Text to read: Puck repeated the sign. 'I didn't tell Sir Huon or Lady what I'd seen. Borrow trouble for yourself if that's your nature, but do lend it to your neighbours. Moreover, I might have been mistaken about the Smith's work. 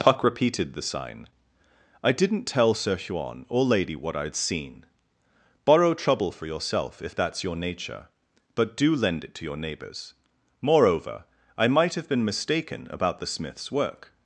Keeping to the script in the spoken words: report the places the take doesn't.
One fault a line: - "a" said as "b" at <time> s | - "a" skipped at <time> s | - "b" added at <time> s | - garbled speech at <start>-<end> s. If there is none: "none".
none